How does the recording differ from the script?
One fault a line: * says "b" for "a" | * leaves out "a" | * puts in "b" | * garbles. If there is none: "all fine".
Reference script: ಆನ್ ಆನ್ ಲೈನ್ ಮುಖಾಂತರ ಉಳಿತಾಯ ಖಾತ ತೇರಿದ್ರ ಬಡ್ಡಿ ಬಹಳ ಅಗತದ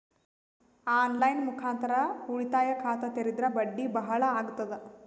* leaves out "ಆನ್"